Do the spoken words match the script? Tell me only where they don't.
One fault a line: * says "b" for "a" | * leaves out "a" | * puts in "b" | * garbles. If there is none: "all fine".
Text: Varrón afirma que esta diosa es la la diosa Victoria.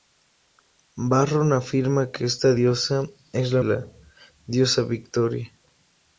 all fine